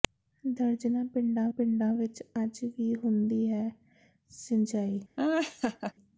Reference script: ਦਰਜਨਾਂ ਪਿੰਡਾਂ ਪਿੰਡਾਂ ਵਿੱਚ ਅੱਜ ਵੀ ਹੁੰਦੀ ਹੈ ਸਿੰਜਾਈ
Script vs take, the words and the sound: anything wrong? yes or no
yes